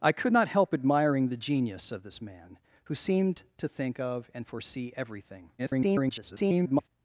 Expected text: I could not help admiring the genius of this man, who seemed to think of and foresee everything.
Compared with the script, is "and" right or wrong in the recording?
right